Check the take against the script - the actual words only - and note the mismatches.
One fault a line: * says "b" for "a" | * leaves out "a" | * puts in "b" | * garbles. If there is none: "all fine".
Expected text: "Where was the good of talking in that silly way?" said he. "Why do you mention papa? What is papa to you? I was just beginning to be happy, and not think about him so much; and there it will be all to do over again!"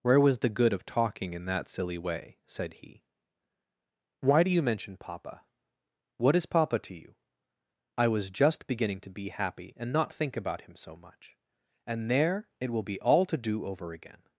all fine